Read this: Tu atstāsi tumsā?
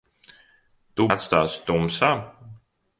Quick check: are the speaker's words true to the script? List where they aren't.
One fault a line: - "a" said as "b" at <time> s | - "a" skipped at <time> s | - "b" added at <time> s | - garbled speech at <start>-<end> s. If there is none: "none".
none